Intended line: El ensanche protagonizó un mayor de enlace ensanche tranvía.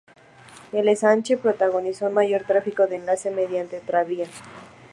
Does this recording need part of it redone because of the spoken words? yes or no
yes